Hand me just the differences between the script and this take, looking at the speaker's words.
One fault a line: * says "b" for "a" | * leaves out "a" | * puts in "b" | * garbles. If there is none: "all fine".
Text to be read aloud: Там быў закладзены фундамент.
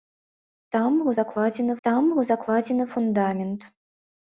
* puts in "там быў закладзены"